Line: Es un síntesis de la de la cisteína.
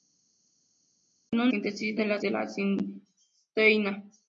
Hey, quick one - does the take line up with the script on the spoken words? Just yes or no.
yes